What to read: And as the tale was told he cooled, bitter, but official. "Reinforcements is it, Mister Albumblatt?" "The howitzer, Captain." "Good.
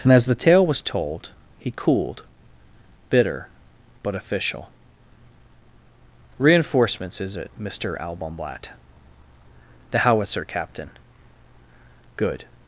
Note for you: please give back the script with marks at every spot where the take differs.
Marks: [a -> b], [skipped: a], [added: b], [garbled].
And as the tale was told he cooled, bitter, but official. "Reinforcements is it, Mister Albumblatt?" "The howitzer, Captain." "Good.